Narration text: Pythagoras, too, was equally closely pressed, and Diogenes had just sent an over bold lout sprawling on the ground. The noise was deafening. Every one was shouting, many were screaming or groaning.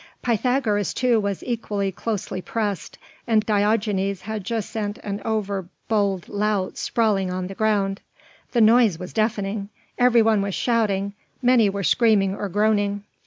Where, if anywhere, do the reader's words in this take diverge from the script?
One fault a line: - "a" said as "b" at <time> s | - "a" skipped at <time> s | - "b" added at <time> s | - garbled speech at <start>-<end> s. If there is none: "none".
none